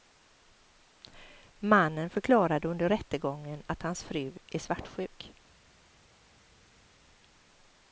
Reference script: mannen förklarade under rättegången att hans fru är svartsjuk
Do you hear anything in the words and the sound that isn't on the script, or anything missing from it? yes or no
no